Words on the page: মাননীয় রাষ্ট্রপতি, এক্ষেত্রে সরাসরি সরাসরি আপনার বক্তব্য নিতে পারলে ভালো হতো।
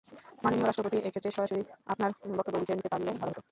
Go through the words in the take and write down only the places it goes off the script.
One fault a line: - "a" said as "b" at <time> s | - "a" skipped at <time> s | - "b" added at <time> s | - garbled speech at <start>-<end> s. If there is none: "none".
- "সরাসরি" skipped at 1.6 s
- "লিখে" added at 2.6 s